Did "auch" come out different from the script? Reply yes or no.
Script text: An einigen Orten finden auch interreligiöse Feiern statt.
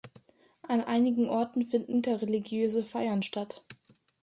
yes